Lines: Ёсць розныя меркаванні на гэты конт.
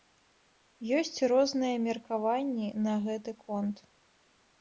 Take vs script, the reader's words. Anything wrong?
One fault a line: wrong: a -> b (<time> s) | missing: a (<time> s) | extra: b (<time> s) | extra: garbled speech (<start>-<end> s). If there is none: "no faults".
no faults